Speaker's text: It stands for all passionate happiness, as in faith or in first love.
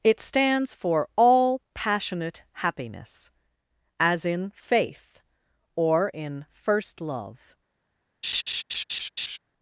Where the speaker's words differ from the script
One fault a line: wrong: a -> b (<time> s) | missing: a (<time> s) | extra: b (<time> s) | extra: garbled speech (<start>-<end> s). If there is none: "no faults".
no faults